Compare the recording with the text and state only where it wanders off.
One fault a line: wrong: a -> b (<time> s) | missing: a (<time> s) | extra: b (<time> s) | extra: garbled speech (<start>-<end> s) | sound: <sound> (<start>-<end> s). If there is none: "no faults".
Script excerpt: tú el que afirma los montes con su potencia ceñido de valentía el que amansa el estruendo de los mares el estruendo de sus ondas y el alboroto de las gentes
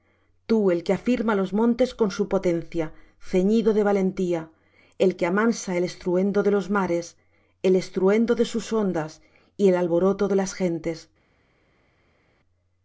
no faults